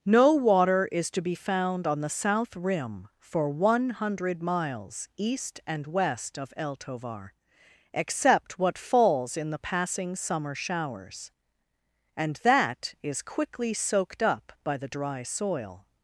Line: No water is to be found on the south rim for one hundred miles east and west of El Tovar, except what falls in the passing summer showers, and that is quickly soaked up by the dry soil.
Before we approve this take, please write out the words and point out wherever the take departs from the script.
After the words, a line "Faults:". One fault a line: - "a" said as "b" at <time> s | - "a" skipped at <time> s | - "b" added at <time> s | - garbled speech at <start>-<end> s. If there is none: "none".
No water is to be found on the south rim for one hundred miles east and west of El Tovar, except what falls in the passing summer showers, and that is quickly soaked up by the dry soil.
Faults:
none